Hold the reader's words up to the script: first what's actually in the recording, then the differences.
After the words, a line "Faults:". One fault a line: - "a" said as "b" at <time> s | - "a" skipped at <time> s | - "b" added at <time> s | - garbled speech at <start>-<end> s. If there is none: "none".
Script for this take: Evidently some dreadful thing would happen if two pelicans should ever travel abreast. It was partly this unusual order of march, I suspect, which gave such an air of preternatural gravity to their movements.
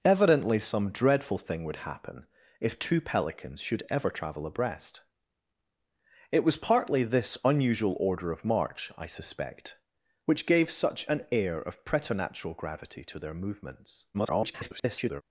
Evidently some dreadful thing would happen if two pelicans should ever travel abreast. It was partly this unusual order of march, I suspect, which gave such an air of preternatural gravity to their movements. [garbled]
Faults:
- garbled speech at 14.1-15.2 s